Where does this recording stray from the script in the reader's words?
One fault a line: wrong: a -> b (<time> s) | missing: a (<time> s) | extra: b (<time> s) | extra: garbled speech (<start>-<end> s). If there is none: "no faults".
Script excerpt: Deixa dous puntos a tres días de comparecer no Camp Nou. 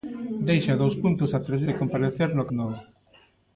missing: días (1.6 s)
missing: Camp (2.5 s)